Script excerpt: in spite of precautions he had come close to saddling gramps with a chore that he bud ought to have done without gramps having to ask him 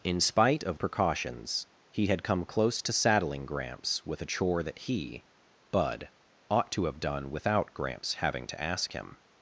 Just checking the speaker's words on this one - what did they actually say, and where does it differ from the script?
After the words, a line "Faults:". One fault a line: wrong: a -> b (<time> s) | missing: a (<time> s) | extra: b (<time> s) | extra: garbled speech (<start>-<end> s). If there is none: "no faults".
in spite of precautions he had come close to saddling gramps with a chore that he bud ought to have done without gramps having to ask him
Faults:
no faults